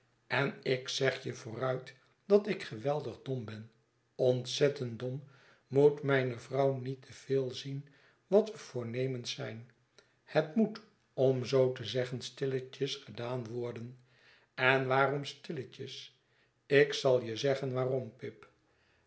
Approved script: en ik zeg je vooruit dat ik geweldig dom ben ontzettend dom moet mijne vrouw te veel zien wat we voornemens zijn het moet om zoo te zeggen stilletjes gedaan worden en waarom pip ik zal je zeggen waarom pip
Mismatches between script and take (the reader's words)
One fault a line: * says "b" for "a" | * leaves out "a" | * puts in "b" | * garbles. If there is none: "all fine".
* puts in "niet"
* says "stilletjes" for "pip"